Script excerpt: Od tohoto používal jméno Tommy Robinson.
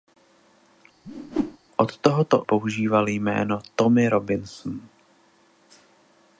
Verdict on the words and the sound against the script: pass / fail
fail